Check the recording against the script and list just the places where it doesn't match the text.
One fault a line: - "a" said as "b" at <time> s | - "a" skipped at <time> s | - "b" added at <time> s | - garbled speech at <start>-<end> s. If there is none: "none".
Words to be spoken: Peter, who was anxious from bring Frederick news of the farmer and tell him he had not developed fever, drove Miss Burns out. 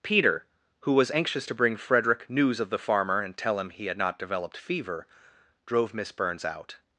- "from" said as "to" at 1.4 s